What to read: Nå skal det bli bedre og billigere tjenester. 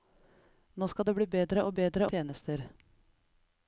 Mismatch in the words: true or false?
true